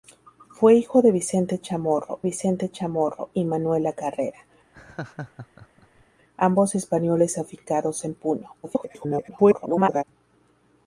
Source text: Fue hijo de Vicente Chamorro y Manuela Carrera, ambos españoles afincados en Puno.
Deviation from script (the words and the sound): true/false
true